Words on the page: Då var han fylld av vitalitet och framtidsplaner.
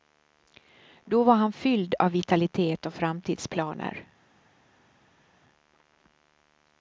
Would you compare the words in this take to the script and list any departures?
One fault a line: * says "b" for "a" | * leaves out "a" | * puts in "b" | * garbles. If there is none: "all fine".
all fine